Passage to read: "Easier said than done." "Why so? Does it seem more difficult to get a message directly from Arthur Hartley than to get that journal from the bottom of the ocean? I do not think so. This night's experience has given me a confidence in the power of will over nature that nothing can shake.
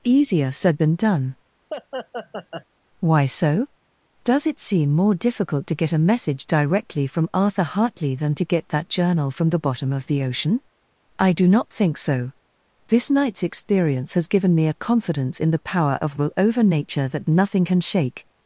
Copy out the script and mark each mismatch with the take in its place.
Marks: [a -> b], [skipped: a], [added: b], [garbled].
"Easier said than done." "Why so? Does it seem more difficult to get a message directly from Arthur Hartley than to get that journal from the bottom of the ocean? I do not think so. This night's experience has given me a confidence in the power of will over nature that nothing can shake.